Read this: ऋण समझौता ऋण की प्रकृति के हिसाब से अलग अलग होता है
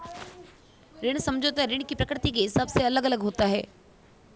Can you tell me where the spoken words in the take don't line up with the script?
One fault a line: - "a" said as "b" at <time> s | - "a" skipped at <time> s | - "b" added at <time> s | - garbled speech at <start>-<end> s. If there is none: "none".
none